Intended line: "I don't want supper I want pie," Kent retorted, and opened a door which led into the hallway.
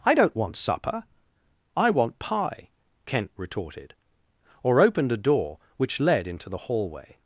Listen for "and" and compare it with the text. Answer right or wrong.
wrong